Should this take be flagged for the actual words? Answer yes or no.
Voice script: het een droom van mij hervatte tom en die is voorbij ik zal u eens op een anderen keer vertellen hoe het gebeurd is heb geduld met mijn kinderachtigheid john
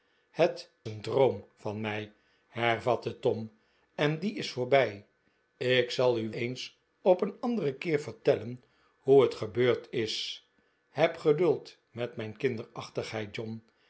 no